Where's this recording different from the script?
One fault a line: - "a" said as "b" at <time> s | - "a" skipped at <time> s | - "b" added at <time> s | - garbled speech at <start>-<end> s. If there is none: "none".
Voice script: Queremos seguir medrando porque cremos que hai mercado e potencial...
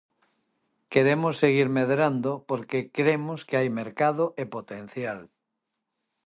none